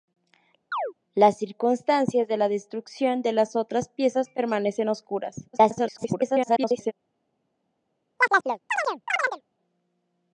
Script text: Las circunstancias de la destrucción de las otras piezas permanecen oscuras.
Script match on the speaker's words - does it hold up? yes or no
no